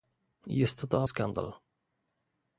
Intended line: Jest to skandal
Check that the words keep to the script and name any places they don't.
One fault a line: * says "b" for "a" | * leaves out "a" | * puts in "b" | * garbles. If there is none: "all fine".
all fine